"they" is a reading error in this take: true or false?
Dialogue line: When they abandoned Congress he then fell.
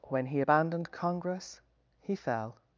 true